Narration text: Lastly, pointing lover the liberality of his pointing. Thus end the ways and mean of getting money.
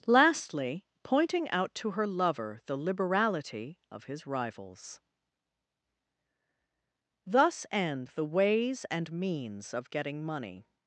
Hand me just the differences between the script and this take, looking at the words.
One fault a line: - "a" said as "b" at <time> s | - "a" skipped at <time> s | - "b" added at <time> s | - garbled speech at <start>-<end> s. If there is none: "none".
- "out to her" added at 1.5 s
- "pointing" said as "rivals" at 4.3 s
- "mean" said as "means" at 9.1 s